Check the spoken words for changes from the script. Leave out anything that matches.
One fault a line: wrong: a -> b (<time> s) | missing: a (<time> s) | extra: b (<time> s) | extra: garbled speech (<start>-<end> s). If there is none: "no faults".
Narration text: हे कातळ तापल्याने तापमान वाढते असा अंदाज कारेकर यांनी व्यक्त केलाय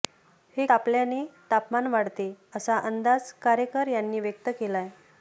missing: कातळ (0.7 s)